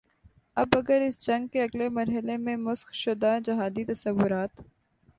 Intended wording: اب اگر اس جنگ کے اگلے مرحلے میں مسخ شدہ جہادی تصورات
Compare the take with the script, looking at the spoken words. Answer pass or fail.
pass